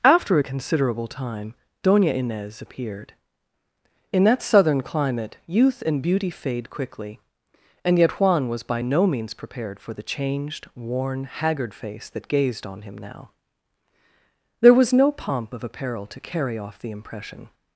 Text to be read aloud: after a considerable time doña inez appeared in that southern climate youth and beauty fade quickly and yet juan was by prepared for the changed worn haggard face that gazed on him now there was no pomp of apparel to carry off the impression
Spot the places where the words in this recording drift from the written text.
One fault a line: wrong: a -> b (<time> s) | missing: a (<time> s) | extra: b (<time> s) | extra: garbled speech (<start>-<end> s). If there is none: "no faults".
extra: no means (8.8 s)